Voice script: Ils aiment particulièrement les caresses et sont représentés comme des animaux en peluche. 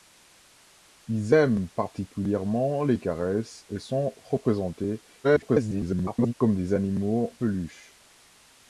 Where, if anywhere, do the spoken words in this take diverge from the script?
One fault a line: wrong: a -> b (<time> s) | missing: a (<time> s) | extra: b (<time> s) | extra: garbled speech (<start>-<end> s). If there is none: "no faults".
extra: garbled speech (5.2-6.3 s)
missing: en (7.3 s)